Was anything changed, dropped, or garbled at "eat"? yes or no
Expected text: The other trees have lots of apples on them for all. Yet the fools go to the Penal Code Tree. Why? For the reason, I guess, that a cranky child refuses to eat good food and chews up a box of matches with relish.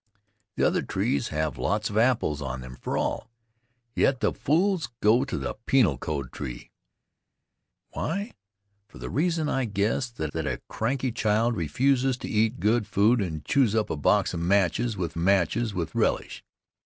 no